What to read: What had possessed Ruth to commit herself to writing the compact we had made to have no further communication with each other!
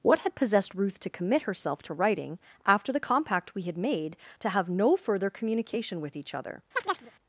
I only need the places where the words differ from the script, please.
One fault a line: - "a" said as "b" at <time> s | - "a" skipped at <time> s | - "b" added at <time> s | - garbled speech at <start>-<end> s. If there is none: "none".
- "after" added at 2.6 s